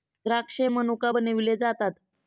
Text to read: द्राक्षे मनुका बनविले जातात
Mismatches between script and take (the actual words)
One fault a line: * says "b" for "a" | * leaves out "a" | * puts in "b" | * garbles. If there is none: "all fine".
all fine